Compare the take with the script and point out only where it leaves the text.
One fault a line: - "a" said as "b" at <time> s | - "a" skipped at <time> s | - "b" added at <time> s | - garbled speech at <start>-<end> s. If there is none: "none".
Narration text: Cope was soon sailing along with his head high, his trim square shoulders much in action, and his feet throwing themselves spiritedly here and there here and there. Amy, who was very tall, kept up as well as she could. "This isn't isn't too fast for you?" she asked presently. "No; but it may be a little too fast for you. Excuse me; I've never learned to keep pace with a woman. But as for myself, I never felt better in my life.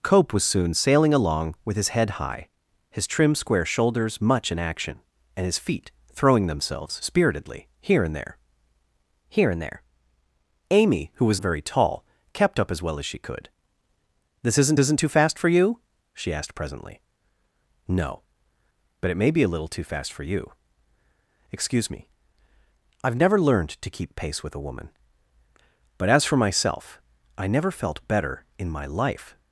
none